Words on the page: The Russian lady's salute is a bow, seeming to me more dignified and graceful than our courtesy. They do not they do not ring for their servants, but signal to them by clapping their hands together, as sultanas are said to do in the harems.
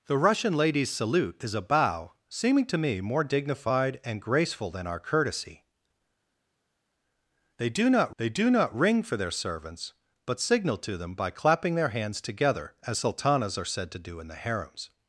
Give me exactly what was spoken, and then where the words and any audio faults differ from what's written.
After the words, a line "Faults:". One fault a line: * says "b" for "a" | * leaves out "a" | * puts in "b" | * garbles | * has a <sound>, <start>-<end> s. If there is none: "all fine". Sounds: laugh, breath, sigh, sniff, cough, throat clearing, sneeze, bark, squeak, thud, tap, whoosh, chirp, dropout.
The Russian lady's salute is a bow, seeming to me more dignified and graceful than our courtesy. They do not they do not ring for their servants, but signal to them by clapping their hands together, as sultanas are said to do in the harems.
Faults:
all fine